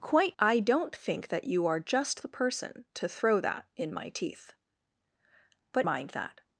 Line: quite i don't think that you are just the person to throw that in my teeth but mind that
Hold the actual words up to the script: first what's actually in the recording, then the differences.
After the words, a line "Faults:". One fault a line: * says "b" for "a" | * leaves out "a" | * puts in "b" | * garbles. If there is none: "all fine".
quite i don't think that you are just the person to throw that in my teeth but mind that
Faults:
all fine